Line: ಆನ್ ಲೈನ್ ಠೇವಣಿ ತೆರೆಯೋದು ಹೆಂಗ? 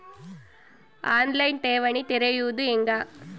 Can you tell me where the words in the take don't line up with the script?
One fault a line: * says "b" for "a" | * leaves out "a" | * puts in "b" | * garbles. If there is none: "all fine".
all fine